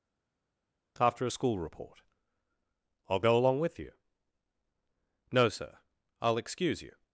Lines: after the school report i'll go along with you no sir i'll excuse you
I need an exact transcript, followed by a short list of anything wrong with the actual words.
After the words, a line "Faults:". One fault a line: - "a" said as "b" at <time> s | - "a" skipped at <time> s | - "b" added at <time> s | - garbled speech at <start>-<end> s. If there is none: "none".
after a school report i'll go along with you no sir i'll excuse you
Faults:
- "the" said as "a" at 1.2 s